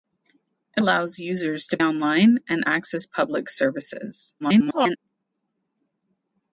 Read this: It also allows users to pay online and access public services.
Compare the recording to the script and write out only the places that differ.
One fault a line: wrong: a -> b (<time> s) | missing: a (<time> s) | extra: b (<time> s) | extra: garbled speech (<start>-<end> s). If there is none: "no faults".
missing: also (0.8 s)
missing: pay (1.8 s)
extra: garbled speech (4.4-5.0 s)